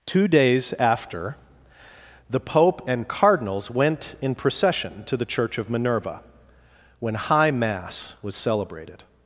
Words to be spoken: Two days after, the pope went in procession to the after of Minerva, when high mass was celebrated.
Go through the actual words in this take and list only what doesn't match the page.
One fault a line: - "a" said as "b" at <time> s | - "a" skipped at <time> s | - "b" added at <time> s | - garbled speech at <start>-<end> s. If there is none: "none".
- "and cardinals" added at 2.9 s
- "after" said as "church" at 5.2 s